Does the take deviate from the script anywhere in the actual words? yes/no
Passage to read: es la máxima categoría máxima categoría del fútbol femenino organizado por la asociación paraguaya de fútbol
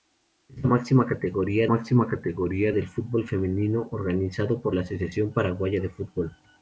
no